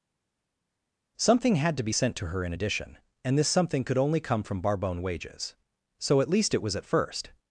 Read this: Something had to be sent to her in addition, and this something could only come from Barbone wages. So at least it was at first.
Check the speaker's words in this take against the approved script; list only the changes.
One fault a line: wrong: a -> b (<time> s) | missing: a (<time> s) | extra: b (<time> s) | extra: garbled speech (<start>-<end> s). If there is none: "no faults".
no faults